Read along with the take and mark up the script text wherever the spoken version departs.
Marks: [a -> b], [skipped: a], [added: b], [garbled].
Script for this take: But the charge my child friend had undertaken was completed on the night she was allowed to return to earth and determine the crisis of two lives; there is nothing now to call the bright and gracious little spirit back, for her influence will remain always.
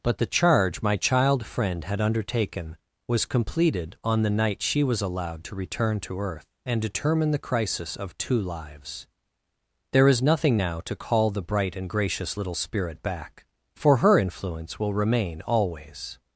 But the charge my child friend had undertaken was completed on the night she was allowed to return to earth and determine the crisis of two lives; there is nothing now to call the bright and gracious little spirit back, for her influence will remain always.